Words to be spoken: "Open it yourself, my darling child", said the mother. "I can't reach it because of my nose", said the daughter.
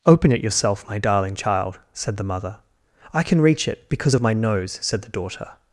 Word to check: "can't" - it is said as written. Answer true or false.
false